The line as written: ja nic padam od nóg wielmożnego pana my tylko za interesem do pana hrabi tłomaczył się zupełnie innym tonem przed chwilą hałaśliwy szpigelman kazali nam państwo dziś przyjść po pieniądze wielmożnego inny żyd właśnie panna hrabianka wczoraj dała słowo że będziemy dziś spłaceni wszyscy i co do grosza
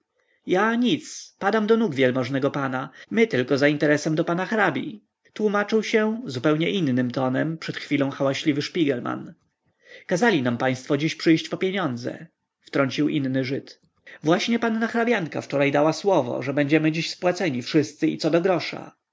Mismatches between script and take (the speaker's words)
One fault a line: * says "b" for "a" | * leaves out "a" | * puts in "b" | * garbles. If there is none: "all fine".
* says "do" for "od"
* says "wtrącił" for "wielmożnego"